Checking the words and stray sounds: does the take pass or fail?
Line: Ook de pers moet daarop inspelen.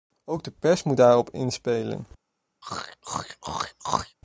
fail